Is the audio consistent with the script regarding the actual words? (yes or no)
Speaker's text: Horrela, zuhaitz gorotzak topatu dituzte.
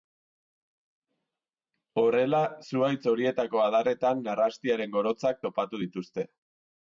no